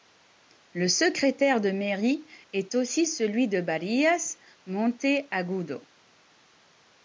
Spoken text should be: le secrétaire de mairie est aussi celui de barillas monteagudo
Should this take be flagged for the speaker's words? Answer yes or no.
no